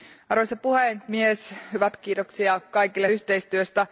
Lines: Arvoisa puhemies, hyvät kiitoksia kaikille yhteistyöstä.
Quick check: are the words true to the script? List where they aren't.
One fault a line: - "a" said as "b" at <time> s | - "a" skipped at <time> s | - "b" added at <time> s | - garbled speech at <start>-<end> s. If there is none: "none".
none